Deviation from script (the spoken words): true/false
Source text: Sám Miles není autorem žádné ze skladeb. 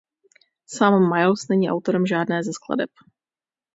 false